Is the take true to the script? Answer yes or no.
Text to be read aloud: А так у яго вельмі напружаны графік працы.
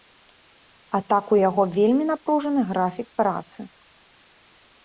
yes